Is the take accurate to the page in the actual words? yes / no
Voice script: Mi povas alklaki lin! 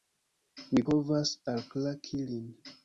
yes